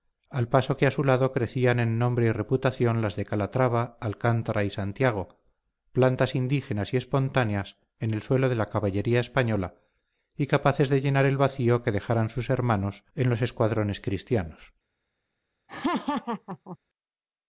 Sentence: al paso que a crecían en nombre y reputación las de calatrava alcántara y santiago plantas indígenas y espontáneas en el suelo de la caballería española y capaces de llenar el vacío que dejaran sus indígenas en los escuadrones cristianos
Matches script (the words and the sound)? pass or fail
fail